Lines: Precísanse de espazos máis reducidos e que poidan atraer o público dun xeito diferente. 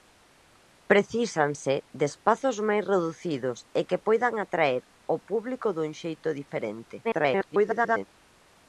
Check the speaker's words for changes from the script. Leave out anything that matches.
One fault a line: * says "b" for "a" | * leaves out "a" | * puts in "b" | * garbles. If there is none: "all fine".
* garbles